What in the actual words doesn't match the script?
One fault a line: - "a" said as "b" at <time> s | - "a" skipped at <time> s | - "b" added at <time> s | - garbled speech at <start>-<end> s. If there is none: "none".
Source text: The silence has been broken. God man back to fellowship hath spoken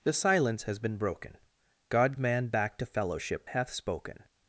none